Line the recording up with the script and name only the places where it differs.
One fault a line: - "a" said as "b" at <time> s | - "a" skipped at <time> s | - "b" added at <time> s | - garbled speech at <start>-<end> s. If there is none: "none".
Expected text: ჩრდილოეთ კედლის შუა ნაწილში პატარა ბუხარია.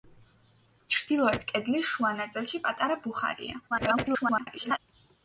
- garbled speech at 3.7-4.8 s